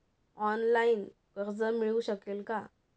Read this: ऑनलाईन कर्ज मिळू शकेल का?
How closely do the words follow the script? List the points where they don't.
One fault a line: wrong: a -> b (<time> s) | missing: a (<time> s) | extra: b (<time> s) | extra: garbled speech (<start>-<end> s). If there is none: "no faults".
no faults